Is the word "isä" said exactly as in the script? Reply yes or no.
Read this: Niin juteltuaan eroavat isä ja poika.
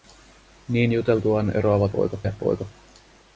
no